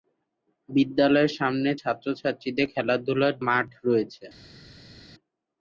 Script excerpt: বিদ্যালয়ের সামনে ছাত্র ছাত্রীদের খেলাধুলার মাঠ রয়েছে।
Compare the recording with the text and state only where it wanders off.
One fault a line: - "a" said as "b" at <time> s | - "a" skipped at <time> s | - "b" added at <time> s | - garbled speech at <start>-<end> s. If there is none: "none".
none